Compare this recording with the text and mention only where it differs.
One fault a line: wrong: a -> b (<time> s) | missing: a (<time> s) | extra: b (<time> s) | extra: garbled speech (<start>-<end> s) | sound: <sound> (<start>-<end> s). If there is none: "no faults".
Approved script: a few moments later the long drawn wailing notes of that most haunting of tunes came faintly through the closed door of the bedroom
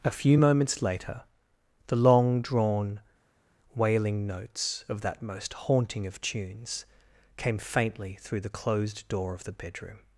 no faults